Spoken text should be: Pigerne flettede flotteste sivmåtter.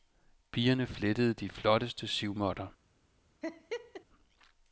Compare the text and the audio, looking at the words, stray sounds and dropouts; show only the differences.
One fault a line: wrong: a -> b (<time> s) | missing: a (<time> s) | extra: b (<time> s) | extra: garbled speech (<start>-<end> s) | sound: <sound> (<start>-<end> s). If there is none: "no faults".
extra: de (1.3 s)
sound: laugh (3.4-4.1 s)